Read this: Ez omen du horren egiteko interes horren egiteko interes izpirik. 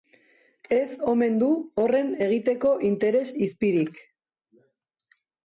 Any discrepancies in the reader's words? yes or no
yes